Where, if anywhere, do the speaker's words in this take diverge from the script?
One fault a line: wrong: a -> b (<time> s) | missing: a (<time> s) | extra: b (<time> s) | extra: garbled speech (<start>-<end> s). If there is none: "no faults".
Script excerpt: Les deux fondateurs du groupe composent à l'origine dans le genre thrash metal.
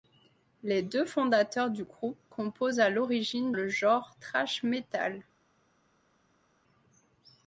missing: dans (3.5 s)